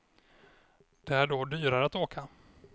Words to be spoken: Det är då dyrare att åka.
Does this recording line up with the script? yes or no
yes